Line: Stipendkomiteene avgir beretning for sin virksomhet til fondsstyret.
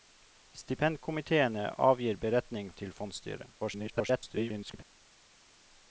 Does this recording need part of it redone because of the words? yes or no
yes